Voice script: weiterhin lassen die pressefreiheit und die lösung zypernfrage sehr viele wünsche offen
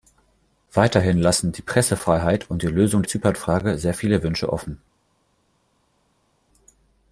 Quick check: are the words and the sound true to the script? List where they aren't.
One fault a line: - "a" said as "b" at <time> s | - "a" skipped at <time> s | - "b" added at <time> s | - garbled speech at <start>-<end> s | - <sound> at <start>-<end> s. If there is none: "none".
none